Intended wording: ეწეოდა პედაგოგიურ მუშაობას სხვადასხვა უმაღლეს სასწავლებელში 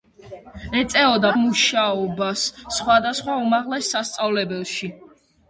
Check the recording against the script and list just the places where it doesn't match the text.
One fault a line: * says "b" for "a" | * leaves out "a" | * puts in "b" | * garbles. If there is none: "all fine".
* leaves out "პედაგოგიურ"